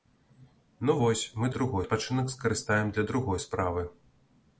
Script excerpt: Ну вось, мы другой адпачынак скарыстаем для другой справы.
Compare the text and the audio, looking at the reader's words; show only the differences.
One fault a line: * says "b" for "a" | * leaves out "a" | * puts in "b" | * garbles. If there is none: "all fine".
all fine